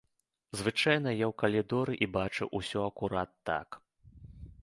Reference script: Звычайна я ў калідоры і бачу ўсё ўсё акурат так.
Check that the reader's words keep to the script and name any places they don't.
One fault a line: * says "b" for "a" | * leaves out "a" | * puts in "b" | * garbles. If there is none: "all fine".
* leaves out "ўсё"